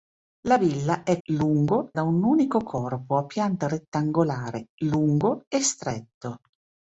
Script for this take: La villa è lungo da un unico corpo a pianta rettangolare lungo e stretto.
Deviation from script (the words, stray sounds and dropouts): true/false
false